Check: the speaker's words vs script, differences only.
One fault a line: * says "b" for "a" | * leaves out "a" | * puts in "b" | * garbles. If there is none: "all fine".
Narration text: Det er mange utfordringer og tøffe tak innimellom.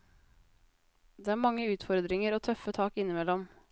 all fine